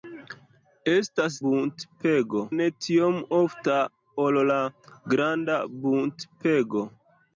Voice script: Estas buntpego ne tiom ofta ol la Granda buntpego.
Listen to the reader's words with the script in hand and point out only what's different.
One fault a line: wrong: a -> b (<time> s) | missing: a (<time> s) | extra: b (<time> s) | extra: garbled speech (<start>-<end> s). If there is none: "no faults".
no faults